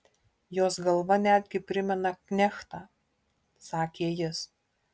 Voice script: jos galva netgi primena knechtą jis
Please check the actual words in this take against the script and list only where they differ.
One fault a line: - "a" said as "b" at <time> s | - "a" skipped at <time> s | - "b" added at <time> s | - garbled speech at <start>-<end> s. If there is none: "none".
- "sakė" added at 3.7 s